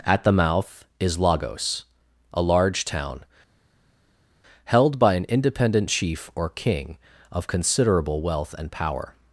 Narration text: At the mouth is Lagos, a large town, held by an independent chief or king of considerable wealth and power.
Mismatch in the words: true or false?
false